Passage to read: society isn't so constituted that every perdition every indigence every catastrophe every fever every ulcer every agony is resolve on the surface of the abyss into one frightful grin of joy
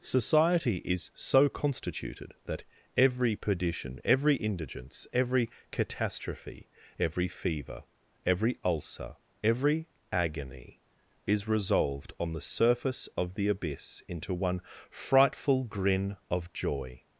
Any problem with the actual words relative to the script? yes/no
yes